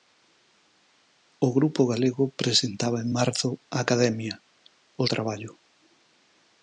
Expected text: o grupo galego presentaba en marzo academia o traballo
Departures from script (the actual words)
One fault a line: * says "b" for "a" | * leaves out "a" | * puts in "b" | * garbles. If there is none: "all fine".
all fine